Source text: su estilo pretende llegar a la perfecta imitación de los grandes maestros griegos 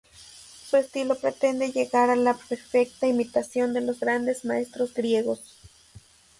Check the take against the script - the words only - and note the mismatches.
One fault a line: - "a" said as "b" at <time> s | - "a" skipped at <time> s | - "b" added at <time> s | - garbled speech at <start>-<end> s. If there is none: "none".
none